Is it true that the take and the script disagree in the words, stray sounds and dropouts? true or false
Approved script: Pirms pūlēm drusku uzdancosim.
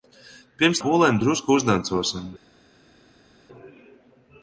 false